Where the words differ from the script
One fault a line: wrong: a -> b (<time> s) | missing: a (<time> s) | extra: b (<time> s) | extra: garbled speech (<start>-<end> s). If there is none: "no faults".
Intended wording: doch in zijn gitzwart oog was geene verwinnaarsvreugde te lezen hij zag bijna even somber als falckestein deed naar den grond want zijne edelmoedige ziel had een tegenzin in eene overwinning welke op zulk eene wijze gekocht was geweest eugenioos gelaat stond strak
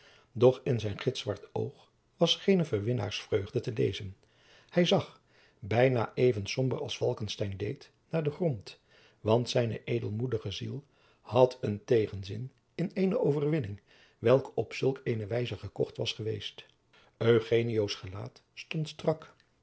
no faults